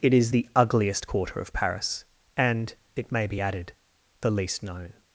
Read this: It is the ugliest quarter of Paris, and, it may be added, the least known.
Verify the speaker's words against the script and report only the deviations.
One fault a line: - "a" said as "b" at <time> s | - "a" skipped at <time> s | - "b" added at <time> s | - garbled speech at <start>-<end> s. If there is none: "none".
none